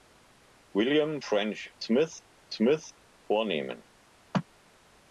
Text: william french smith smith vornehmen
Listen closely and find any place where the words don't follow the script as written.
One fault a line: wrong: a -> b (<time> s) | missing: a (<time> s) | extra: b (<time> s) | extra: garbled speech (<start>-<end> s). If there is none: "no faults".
no faults